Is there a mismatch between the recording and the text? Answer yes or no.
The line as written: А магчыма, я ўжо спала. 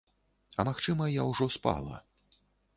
no